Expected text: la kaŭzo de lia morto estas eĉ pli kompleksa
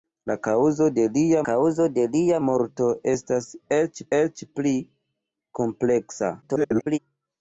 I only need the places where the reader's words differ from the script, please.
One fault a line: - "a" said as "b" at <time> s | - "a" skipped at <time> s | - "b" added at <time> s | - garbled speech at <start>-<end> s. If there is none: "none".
- "kaŭzo de lia" added at 1.5 s
- "eĉ" added at 4.2 s
- garbled speech at 6.4-7.0 s